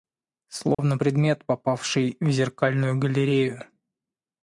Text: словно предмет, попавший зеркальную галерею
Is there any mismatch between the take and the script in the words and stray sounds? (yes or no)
yes